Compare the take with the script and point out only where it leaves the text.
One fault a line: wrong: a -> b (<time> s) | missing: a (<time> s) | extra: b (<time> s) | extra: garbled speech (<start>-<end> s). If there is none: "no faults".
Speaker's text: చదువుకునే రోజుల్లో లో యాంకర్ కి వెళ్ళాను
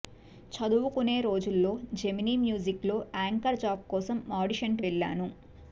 extra: జెమినీ మ్యూజిక్ (1.9 s)
extra: జాబ్ కోసం ఆడిషన్ (3.6 s)